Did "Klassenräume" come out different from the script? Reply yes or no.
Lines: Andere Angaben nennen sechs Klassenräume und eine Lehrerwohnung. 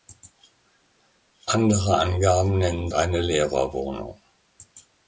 yes